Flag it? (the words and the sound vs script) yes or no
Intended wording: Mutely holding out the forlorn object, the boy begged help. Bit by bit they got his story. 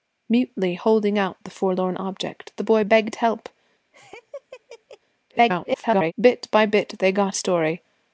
yes